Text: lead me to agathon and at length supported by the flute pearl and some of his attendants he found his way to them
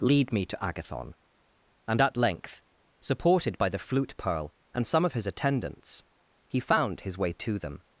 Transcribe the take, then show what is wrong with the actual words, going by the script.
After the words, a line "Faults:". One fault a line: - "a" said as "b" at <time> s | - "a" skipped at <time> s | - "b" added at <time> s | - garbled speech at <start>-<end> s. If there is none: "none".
lead me to agathon and at length supported by the flute pearl and some of his attendants he found his way to them
Faults:
none